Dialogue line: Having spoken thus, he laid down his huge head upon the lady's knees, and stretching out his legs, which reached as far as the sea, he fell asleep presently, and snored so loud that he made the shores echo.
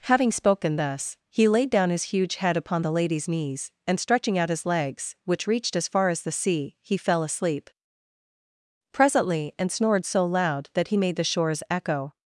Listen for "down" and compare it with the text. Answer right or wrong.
right